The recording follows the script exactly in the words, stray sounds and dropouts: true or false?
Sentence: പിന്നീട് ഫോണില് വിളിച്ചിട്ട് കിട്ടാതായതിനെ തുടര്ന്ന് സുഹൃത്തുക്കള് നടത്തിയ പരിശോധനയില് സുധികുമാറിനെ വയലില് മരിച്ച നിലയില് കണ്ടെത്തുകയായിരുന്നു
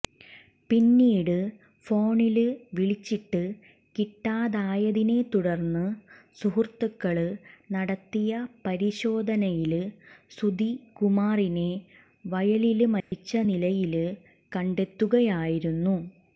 false